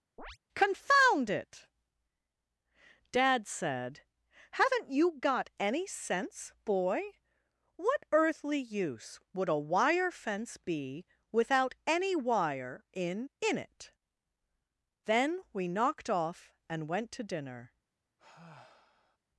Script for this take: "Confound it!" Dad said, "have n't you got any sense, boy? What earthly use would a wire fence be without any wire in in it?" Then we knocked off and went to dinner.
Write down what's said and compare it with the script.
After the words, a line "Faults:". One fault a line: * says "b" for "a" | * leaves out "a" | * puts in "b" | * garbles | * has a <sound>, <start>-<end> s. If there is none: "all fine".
"Confound it!" Dad said, "have n't you got any sense, boy? What earthly use would a wire fence be without any wire in in it?" Then we knocked off and went to dinner.
Faults:
* has a chirp, 0.2-0.4 s
* has a sigh, 18.2-19.2 s